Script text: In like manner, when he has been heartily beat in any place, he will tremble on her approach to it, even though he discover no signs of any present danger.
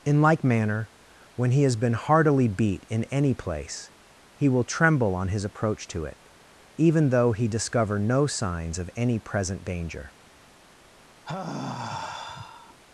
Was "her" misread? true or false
true